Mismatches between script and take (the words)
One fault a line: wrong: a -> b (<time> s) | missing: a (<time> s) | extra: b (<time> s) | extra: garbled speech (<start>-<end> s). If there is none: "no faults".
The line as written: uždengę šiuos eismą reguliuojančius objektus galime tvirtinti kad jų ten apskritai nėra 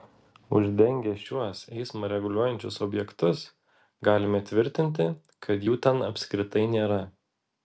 no faults